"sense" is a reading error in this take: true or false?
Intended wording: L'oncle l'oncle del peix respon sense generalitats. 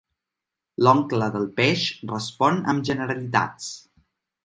true